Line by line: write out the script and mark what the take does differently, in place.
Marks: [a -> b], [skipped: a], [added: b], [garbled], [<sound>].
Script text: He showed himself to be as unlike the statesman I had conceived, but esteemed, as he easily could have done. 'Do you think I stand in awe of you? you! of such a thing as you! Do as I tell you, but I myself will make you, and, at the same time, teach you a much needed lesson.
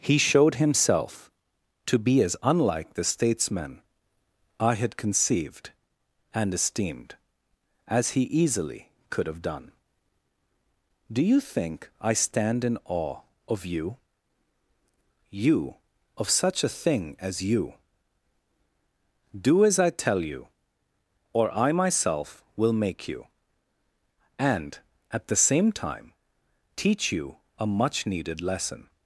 He showed himself to be as unlike the statesman I had conceived, [but -> and] esteemed, as he easily could have done. 'Do you think I stand in awe of you? you! of such a thing as you! Do as I tell you, [but -> or] I myself will make you, and, at the same time, teach you a much needed lesson.